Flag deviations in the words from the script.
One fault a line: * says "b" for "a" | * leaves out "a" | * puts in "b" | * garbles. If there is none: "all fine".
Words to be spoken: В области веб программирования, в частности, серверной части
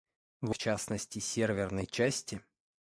* leaves out "области веб программирования"